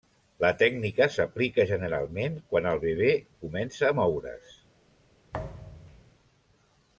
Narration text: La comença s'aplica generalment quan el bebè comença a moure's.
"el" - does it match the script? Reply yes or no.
yes